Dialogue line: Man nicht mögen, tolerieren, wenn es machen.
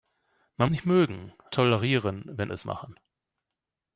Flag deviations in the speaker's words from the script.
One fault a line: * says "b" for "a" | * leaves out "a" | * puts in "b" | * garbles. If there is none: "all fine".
all fine